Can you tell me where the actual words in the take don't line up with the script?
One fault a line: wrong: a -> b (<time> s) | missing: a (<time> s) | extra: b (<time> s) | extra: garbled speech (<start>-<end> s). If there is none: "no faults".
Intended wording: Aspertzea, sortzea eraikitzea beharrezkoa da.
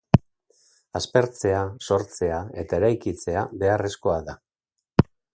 extra: eta (2.6 s)